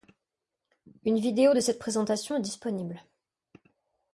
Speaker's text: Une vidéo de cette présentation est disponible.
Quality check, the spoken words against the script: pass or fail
pass